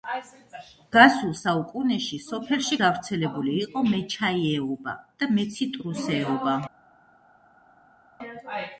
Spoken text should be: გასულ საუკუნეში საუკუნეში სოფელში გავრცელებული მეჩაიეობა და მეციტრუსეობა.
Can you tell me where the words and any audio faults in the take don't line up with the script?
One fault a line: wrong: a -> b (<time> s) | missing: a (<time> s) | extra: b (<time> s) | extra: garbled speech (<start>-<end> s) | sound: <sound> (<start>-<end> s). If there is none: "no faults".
missing: საუკუნეში (2.2 s)
extra: იყო (3.7 s)